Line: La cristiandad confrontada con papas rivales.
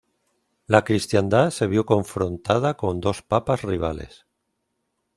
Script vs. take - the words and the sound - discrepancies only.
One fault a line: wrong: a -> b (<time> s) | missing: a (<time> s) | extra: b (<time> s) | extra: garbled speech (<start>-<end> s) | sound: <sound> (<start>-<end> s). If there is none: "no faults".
extra: se vio (1.5 s)
extra: dos (3.0 s)